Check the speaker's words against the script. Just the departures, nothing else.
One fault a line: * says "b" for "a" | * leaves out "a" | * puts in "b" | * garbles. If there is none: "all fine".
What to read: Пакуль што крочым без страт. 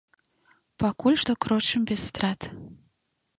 all fine